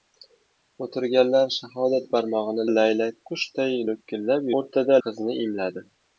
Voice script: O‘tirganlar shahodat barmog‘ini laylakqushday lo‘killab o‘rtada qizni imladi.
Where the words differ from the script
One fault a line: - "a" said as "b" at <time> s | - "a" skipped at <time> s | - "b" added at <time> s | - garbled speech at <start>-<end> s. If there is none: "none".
none